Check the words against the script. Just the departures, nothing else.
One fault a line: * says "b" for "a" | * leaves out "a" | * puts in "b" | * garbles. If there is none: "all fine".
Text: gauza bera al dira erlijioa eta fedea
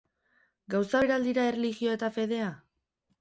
all fine